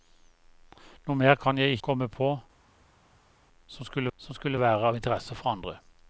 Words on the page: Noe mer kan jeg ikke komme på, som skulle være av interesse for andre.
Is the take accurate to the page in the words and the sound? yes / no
no